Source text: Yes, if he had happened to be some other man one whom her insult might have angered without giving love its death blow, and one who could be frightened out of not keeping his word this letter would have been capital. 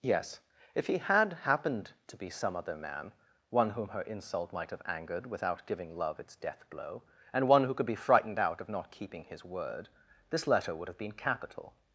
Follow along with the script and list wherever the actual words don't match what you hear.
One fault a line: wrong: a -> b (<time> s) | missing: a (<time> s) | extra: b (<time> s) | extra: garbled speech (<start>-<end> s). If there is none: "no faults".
no faults